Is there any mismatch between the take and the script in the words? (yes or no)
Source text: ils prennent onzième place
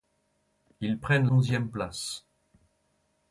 no